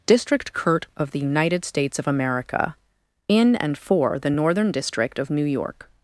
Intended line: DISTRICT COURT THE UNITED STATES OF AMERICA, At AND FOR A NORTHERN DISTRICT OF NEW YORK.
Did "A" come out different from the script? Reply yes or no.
yes